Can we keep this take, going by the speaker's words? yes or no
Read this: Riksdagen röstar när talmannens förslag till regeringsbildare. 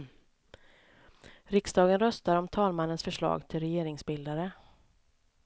no